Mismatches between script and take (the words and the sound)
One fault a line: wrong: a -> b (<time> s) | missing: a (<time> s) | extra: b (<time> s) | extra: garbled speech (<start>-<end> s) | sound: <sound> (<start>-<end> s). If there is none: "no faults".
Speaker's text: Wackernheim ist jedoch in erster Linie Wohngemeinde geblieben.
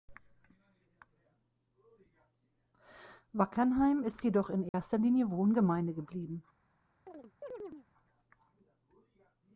sound: dropout (4.7-4.7 s)
sound: chirp (7.1-7.9 s)